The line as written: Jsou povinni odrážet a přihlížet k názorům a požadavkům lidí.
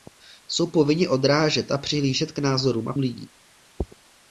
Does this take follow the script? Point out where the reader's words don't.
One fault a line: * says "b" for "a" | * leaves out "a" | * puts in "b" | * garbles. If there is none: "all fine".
* leaves out "požadavkům"